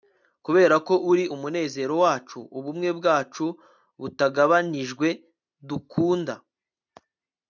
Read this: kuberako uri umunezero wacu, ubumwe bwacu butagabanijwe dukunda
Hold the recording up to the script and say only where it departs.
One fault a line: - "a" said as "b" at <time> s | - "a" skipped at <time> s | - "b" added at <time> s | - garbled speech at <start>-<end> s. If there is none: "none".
none